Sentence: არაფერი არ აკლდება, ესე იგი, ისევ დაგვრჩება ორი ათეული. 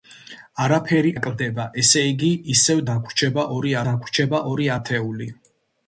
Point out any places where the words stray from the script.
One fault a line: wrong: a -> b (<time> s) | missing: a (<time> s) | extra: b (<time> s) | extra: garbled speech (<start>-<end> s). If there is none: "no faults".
missing: არ (1.1 s)
extra: დაგვრჩება ორი (3.9 s)